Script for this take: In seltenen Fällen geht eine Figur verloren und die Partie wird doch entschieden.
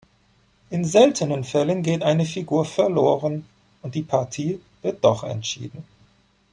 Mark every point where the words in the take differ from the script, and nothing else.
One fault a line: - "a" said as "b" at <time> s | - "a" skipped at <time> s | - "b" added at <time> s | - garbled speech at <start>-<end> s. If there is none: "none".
none